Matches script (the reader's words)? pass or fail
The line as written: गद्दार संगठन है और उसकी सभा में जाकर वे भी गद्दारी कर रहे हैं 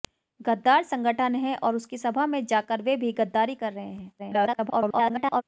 fail